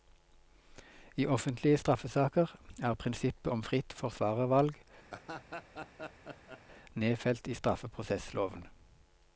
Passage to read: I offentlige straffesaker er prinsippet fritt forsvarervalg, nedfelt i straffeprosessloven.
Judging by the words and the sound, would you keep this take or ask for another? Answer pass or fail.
fail